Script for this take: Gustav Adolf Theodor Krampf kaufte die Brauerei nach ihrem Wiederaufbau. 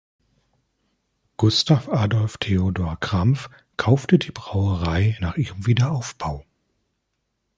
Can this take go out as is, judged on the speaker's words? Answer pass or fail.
pass